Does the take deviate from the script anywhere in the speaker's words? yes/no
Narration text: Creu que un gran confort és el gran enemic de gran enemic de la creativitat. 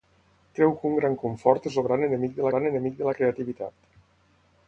no